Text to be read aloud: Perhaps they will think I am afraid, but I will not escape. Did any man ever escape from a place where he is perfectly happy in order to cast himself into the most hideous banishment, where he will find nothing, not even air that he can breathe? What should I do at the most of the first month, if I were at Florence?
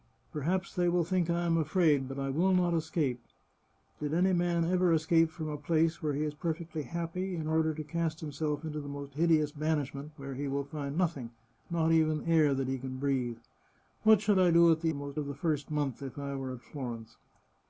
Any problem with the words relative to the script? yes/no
no